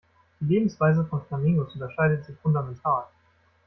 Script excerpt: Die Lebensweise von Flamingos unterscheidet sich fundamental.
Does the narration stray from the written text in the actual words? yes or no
no